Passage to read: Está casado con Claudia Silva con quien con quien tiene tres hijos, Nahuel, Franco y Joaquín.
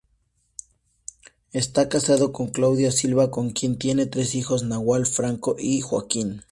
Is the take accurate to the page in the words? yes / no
no